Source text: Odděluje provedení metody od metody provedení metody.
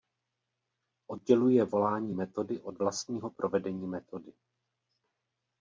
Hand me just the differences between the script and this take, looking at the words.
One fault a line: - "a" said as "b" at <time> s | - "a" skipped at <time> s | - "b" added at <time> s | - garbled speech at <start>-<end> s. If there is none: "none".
- "provedení" said as "volání" at 1.6 s
- "metody" said as "vlastního" at 2.8 s